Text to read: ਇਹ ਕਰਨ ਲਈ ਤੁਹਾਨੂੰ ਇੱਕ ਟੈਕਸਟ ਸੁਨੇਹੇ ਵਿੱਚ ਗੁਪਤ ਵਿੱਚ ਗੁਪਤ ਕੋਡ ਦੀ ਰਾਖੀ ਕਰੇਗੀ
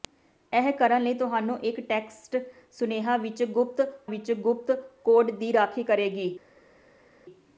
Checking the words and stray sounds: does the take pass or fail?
pass